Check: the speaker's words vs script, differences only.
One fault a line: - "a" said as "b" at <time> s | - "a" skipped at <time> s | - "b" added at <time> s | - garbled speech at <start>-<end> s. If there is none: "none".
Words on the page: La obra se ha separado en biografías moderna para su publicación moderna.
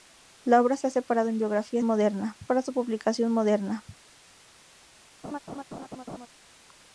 none